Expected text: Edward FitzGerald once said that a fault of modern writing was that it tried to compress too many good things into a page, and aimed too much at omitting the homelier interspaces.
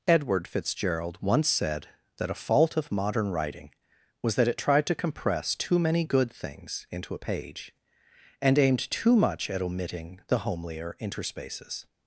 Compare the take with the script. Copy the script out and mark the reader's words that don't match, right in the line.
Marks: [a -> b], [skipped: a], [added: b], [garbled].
Edward FitzGerald once said that a fault of modern writing was that it tried to compress too many good things into a page, and aimed too much at omitting the homelier interspaces.